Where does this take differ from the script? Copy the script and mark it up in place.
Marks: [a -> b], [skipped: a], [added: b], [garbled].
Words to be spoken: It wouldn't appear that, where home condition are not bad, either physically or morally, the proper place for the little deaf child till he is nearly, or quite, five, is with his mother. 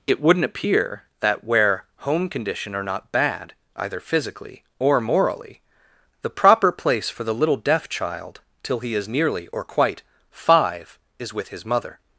It wouldn't appear that, where home condition are not bad, either physically or morally, the proper place for the little deaf child till he is nearly, or quite, five, is with his mother.